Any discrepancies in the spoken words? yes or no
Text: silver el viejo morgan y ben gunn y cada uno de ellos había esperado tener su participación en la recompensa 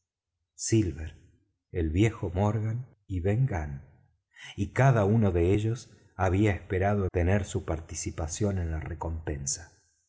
no